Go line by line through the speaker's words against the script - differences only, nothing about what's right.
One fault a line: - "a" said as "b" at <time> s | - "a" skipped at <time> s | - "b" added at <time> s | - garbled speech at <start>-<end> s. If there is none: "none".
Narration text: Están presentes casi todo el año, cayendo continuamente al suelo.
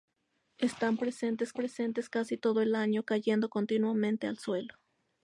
- "presentes" added at 1.5 s